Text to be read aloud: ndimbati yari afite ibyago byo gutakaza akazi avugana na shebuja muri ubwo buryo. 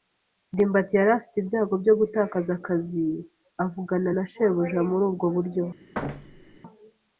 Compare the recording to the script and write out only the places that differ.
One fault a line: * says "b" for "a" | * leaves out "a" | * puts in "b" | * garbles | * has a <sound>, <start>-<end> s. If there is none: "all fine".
* has a thud, 5.9-6.6 s